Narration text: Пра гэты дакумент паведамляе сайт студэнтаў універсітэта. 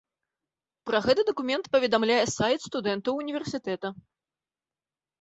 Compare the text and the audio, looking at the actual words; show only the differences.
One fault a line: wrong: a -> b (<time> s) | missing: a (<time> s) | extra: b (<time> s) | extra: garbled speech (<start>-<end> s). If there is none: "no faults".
no faults